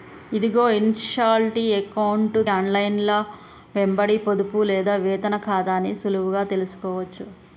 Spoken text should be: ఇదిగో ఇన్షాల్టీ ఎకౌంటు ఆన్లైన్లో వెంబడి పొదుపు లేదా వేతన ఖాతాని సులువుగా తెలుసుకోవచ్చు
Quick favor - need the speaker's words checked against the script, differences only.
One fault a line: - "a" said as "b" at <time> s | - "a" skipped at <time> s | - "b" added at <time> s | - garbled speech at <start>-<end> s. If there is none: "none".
none